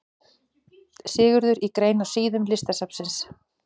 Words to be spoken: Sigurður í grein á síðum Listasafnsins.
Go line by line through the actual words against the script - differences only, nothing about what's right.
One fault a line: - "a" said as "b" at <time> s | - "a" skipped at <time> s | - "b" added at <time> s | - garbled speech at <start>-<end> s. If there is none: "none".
none